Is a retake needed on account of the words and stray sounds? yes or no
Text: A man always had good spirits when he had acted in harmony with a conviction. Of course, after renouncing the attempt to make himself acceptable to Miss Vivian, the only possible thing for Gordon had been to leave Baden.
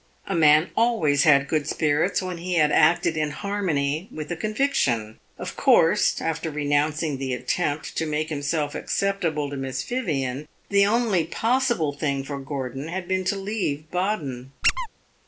yes